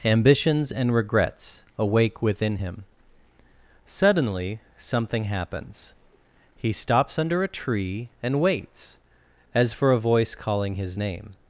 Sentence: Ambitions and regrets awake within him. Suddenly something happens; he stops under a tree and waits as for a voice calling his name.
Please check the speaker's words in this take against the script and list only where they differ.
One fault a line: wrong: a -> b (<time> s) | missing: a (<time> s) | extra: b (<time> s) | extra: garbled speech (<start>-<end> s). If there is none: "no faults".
no faults